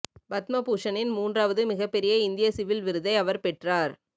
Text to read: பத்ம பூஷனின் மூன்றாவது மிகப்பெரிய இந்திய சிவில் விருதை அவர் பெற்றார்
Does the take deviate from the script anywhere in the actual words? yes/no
no